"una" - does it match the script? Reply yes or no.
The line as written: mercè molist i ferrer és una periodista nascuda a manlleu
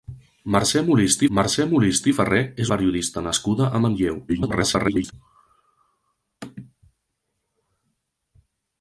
no